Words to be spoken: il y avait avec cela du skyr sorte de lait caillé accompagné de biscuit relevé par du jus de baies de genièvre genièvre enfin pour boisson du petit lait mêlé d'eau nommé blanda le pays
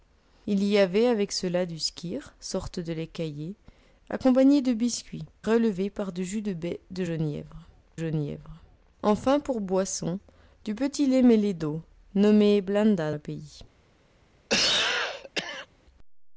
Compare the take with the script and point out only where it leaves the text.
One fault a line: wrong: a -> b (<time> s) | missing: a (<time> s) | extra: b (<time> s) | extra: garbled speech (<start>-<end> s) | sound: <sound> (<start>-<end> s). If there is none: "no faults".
sound: cough (14.5-15.7 s)